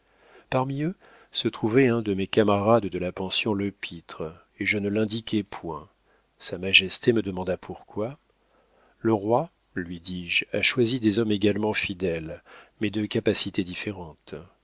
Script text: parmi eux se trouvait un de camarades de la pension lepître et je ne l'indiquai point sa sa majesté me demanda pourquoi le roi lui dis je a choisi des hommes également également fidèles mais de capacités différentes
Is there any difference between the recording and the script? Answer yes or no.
yes